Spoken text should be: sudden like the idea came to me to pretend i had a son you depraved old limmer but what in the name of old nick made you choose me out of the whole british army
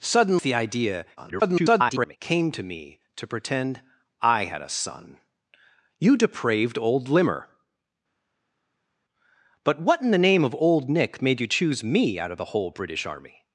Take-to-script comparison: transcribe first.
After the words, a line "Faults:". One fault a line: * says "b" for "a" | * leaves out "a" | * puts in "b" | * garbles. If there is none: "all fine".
sudden the idea [garbled] came to me to pretend i had a son you depraved old limmer but what in the name of old nick made you choose me out of the whole british army
Faults:
* leaves out "like"
* garbles